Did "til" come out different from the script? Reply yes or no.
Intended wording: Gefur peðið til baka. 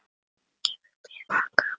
yes